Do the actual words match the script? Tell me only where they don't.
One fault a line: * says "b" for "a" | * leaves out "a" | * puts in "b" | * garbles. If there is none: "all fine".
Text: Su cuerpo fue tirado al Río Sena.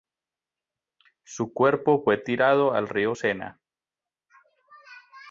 all fine